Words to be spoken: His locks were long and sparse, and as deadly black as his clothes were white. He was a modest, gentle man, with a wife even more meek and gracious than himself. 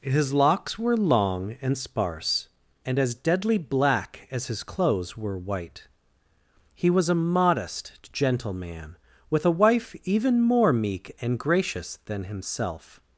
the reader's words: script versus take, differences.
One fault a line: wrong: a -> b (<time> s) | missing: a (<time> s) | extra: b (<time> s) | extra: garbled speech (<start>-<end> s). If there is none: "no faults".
no faults